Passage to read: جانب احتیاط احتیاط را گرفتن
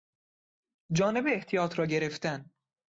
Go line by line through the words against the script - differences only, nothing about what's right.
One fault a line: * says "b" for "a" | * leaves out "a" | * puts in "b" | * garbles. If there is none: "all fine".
* leaves out "احتیاط"